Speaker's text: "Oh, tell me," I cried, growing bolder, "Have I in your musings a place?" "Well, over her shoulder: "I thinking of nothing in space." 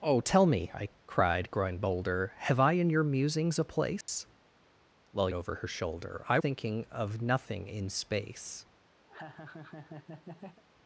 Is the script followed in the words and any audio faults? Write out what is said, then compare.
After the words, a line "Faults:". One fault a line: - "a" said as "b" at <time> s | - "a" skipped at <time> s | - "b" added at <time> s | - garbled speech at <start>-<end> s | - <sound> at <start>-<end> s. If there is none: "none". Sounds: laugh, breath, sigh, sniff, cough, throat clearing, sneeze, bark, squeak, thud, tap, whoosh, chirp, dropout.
"Oh, tell me," I cried, growing bolder, "Have I in your musings a place?" "Well, over her shoulder: "I thinking of nothing in space."
Faults:
- dropout at 4.0-4.1 s
- laugh at 9.1-10.6 s